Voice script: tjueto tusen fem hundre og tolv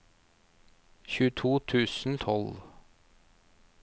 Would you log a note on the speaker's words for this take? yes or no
yes